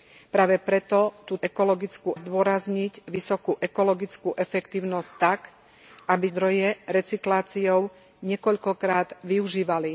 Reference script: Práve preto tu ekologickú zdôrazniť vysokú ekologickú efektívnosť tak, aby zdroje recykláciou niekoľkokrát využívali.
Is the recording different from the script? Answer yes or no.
no